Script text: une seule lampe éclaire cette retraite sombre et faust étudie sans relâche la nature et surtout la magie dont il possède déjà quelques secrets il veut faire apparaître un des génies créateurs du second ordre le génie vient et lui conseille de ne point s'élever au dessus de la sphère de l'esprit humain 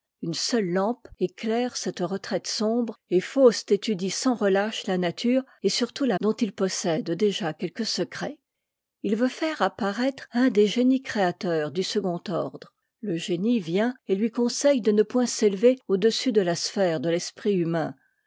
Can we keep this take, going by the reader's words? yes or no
no